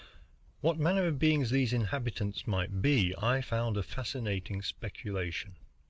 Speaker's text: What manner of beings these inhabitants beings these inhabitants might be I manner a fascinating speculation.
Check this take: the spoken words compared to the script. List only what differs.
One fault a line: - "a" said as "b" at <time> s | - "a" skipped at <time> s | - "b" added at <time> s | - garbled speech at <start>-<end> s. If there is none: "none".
- "beings these inhabitants" skipped at 2.5 s
- "manner" said as "found" at 3.4 s